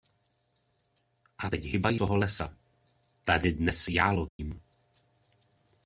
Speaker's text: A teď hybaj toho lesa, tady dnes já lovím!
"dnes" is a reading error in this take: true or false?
false